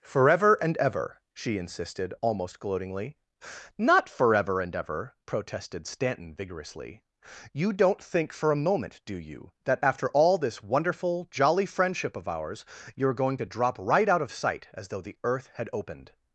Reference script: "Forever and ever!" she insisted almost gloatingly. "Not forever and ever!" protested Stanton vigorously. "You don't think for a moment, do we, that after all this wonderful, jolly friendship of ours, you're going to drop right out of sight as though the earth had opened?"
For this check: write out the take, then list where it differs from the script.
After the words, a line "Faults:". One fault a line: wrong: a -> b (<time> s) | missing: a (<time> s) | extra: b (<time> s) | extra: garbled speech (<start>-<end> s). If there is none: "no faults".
"Forever and ever!" she insisted almost gloatingly. "Not forever and ever!" protested Stanton vigorously. "You don't think for a moment, do you, that after all this wonderful, jolly friendship of ours, you're going to drop right out of sight as though the earth had opened?"
Faults:
wrong: we -> you (9.1 s)